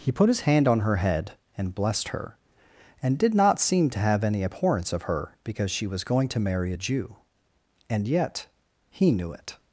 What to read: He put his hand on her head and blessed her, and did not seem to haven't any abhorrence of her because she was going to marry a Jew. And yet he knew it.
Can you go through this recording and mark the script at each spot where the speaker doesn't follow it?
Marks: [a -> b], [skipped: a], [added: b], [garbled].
He put his hand on her head and blessed her, and did not seem to [haven't -> have] any abhorrence of her because she was going to marry a Jew. And yet he knew it.